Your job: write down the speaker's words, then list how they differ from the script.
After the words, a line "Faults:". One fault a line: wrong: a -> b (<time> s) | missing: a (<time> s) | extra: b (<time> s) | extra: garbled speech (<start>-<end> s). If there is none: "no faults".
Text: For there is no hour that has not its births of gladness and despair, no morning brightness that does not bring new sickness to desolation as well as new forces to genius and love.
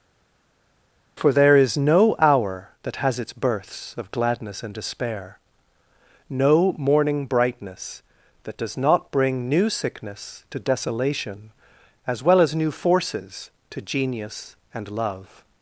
For there is no hour that has its births of gladness and despair, no morning brightness that does not bring new sickness to desolation as well as new forces to genius and love.
Faults:
missing: not (3.2 s)